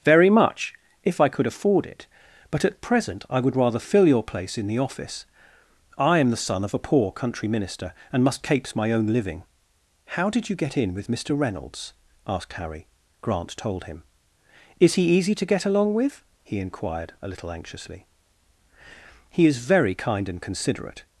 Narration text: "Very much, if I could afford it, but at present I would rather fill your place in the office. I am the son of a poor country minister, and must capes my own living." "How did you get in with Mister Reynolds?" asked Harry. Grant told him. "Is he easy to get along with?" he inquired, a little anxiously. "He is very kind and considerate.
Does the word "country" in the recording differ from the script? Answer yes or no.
no